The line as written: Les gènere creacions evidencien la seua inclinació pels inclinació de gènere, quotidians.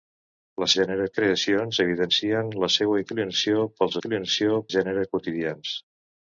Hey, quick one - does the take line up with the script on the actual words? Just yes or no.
yes